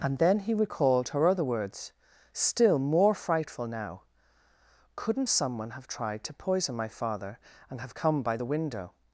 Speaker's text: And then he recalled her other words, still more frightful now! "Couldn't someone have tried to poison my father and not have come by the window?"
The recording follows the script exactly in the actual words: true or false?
false